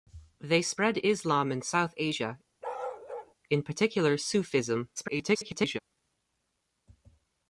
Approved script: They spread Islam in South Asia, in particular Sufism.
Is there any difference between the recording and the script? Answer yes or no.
yes